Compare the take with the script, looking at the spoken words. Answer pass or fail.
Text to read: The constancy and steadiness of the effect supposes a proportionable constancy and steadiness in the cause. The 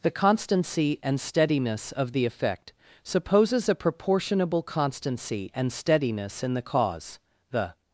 pass